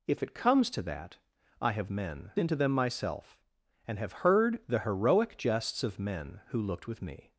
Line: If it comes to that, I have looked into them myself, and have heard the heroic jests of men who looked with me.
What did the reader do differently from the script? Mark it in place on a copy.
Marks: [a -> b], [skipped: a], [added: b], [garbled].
If it comes to that, I have [looked -> men] into them myself, and have heard the heroic jests of men who looked with me.